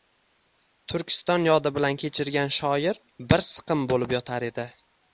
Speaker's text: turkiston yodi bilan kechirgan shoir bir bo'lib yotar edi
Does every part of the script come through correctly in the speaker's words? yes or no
no